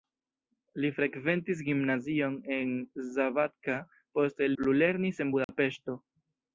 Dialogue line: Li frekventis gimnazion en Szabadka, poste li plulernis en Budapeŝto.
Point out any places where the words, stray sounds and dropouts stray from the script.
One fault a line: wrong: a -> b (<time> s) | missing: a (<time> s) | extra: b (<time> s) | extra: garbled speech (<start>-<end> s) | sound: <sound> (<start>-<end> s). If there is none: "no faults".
missing: li (4.5 s)
sound: dropout (5.4-5.5 s)